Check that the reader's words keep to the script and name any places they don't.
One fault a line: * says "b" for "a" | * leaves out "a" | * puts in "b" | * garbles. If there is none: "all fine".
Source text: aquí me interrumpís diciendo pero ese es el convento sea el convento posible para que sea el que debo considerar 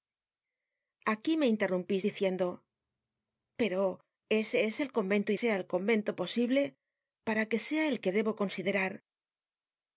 all fine